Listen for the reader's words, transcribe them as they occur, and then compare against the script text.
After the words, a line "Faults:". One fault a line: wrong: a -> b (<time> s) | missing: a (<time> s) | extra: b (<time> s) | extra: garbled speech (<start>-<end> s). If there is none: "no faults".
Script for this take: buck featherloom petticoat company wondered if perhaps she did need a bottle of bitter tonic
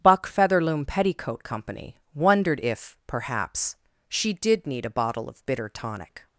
buck featherloom petticoat company wondered if perhaps she did need a bottle of bitter tonic
Faults:
no faults